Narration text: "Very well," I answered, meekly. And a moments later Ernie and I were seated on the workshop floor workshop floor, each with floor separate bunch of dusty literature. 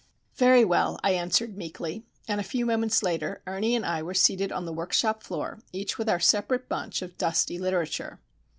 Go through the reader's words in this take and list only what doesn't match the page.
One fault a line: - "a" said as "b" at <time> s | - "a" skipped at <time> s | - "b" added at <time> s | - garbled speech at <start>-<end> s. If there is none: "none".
- "few" added at 2.4 s
- "workshop floor" skipped at 5.6 s
- "floor" said as "our" at 6.1 s